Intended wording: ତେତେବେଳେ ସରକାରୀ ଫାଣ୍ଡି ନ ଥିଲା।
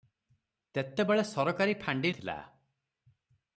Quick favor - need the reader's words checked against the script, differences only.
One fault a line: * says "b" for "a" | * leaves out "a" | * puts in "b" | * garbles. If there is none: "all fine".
* leaves out "ନ"